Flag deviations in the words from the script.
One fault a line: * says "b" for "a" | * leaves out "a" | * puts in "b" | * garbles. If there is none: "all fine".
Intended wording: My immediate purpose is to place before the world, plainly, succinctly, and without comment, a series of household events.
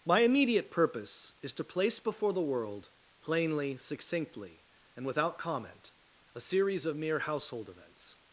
* puts in "mere"